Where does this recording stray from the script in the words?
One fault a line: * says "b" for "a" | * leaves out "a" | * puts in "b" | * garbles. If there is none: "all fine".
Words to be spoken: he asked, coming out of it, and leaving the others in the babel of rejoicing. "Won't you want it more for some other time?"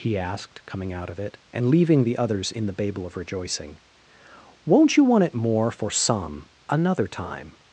* says "another" for "other"